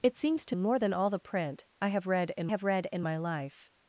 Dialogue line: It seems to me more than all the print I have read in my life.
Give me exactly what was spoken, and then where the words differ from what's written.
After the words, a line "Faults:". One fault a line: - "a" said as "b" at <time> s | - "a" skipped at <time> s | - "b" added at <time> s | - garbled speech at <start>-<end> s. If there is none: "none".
It seems to more than all the print I have read in have read in my life.
Faults:
- "me" skipped at 0.6 s
- "have read in" added at 2.5 s